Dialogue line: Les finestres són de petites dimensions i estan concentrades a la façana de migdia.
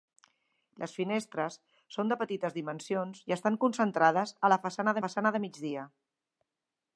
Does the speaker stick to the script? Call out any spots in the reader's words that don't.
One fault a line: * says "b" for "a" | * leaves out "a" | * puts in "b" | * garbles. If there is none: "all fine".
* puts in "façana"